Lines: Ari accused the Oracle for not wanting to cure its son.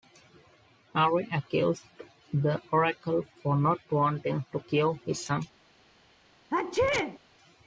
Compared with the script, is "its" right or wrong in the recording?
wrong